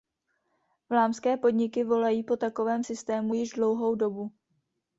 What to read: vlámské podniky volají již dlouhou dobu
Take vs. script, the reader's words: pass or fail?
fail